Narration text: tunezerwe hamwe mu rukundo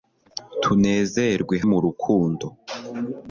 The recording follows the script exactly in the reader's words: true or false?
false